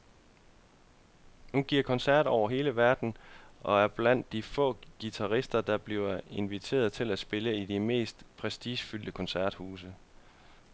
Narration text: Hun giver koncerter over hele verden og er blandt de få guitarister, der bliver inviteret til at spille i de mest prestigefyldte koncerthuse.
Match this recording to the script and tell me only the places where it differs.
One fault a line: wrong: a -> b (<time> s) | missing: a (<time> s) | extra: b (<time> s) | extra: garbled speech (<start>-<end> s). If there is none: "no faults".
no faults